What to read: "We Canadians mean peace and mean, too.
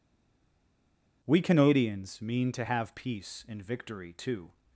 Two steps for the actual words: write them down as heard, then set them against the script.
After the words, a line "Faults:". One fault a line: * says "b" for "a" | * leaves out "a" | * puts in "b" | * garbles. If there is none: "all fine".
"We Canadians mean to have peace and victory, too.
Faults:
* puts in "to have"
* says "victory" for "mean"